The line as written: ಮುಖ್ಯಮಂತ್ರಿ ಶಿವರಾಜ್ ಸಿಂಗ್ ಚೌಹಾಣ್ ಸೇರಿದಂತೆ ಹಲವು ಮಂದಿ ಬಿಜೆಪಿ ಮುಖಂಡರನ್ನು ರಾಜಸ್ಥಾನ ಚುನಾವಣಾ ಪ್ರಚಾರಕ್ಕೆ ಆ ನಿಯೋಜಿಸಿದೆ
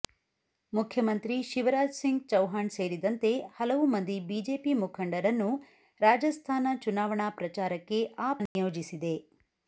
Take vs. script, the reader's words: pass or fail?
pass